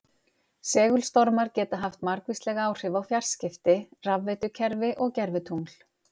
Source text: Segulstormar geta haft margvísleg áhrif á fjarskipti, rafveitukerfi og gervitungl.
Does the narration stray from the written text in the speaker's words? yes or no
no